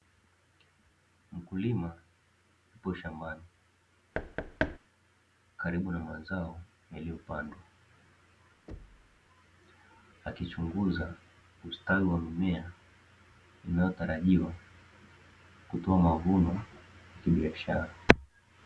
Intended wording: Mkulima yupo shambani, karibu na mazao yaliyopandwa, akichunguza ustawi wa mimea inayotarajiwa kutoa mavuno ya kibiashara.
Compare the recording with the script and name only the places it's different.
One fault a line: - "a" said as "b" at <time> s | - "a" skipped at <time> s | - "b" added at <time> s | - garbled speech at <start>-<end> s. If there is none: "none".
none